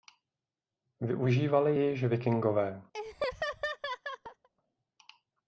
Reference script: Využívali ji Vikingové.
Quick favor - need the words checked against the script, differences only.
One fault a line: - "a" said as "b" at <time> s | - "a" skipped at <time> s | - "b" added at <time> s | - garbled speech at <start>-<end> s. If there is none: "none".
- "již" added at 1.9 s